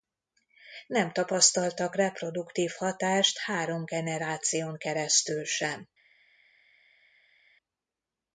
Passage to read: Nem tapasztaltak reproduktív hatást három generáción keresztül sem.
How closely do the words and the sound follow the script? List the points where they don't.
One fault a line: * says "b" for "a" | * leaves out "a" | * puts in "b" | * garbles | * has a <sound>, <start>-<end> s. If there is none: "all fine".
all fine